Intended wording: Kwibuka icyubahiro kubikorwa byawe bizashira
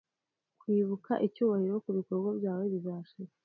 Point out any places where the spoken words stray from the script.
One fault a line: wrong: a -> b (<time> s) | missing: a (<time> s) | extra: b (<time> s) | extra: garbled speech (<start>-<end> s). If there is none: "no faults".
no faults